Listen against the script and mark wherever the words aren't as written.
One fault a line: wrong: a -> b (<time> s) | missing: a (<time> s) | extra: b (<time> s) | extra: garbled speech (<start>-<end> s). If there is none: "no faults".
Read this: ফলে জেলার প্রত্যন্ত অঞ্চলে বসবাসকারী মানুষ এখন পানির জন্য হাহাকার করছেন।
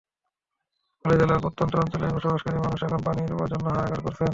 no faults